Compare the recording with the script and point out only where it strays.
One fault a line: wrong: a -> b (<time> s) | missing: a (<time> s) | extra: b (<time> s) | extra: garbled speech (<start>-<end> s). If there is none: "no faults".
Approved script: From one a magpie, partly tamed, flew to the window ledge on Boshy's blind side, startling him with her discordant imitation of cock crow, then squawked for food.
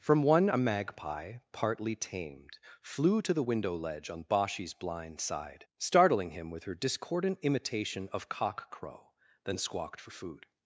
no faults